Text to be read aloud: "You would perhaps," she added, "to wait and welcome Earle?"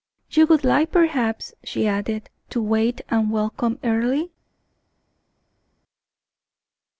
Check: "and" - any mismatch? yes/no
no